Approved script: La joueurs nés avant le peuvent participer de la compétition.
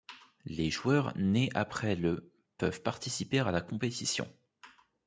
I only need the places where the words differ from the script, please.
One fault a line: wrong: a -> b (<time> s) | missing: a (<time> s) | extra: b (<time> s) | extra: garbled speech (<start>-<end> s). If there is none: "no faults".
wrong: La -> Les (0.5 s)
wrong: avant -> après (1.5 s)
wrong: de -> à (3.4 s)